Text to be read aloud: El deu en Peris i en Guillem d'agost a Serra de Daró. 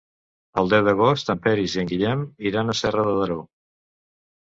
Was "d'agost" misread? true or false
true